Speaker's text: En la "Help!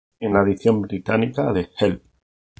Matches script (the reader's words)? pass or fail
fail